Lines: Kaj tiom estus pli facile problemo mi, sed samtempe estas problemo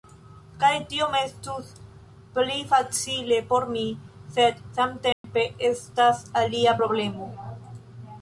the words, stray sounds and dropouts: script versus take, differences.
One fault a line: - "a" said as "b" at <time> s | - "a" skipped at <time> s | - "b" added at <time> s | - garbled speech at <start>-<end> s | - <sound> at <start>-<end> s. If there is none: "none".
- "problemo" said as "por" at 3.5 s
- dropout at 5.1-5.2 s
- "alia" added at 6.4 s